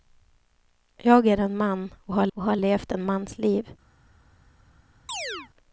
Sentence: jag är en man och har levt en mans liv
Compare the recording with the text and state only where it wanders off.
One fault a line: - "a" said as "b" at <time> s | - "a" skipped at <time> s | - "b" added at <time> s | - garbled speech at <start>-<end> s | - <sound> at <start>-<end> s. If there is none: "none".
- "och har" added at 2.3 s
- chirp at 5.1-5.5 s